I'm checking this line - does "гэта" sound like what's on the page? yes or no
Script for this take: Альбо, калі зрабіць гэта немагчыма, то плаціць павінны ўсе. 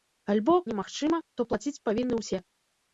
no